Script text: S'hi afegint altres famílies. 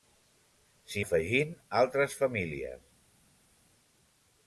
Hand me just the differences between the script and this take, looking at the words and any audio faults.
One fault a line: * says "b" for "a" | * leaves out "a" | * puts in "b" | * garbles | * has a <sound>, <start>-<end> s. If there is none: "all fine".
all fine